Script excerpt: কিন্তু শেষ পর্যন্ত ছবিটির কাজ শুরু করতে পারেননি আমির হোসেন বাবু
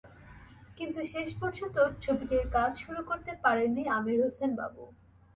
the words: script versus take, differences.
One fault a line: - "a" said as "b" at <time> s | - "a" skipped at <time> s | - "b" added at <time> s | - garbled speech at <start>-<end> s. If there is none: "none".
none